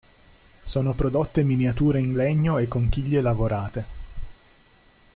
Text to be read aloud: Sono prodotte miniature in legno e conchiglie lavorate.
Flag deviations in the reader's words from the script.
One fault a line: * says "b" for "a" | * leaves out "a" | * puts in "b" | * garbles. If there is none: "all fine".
all fine